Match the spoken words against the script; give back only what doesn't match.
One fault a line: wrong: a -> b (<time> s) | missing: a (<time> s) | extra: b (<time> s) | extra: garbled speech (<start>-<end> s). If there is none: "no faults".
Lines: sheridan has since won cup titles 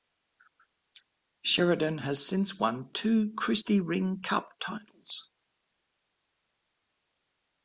extra: two christy ring (2.9 s)